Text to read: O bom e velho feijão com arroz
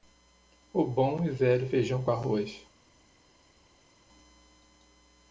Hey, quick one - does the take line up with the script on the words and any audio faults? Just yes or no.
yes